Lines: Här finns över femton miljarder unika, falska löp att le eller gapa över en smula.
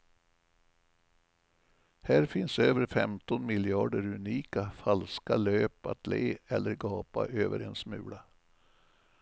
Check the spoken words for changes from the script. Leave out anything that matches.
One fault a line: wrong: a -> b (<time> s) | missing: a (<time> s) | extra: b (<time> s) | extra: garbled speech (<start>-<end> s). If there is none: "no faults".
no faults